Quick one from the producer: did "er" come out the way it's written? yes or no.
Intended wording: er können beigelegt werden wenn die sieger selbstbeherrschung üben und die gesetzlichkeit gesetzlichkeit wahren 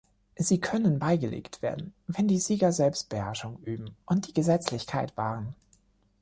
no